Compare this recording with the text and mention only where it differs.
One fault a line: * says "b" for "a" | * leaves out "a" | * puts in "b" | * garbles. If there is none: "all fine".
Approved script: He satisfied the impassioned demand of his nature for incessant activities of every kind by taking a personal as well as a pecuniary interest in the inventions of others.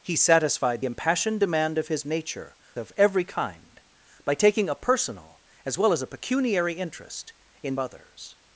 * leaves out "the"
* leaves out "for incessant activities"
* leaves out "the inventions of"